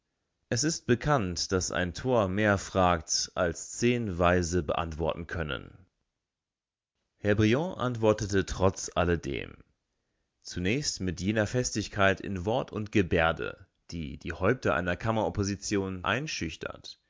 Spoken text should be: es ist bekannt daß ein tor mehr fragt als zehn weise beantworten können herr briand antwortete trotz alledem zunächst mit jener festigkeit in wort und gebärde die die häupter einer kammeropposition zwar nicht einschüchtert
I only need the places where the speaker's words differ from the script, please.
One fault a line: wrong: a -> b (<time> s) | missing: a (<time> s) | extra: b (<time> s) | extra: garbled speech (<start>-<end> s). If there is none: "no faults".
missing: zwar nicht (16.0 s)